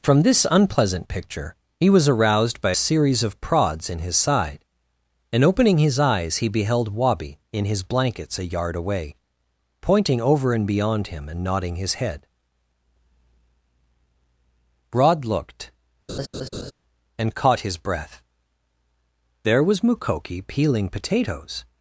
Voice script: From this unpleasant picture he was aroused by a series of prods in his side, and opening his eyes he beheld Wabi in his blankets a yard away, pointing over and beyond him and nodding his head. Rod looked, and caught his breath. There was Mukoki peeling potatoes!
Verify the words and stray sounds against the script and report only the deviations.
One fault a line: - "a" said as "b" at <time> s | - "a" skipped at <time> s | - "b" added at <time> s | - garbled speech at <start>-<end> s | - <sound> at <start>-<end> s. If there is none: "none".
- "a" skipped at 2.7 s
- laugh at 16.1-16.7 s